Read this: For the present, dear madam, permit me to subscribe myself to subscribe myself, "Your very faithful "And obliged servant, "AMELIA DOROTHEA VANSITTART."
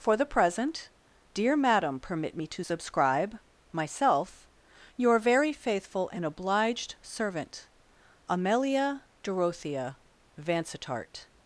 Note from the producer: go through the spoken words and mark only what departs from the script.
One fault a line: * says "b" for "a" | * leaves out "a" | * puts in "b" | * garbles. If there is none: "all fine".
* leaves out "to subscribe myself"